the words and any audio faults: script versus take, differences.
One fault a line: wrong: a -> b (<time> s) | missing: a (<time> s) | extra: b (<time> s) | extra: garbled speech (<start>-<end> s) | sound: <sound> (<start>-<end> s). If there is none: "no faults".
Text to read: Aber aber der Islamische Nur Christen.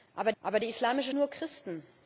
no faults